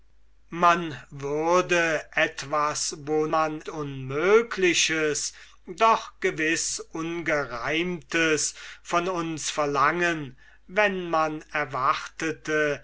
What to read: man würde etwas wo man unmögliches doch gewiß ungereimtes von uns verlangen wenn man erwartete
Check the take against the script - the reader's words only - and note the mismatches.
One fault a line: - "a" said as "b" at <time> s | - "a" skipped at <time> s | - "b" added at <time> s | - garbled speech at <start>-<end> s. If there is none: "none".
none